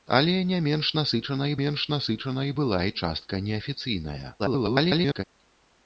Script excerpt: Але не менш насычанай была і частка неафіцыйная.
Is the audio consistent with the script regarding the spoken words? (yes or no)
no